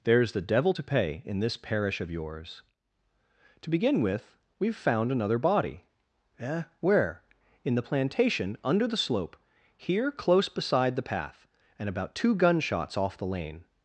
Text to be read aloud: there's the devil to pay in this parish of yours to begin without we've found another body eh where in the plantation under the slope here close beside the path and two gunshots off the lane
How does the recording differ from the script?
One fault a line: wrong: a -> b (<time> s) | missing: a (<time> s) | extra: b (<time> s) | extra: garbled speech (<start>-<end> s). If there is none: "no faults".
wrong: without -> with (4.0 s)
extra: about (11.9 s)